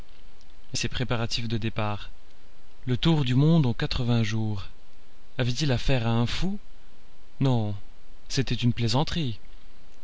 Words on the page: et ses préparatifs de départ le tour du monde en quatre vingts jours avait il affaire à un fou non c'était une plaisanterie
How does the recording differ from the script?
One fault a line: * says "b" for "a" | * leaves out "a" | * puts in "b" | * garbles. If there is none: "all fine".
all fine